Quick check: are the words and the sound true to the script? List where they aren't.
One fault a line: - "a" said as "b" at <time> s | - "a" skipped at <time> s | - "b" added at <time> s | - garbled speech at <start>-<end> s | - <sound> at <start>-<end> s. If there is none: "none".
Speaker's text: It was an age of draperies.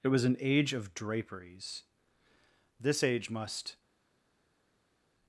- "This age must" added at 2.8 s